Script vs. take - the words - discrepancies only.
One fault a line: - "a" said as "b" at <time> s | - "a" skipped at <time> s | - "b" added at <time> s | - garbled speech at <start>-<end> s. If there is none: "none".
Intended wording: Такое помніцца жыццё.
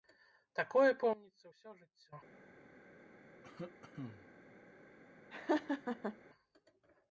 - "ўсё" added at 1.5 s